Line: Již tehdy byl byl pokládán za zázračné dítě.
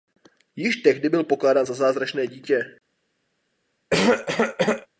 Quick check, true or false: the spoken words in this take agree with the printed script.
false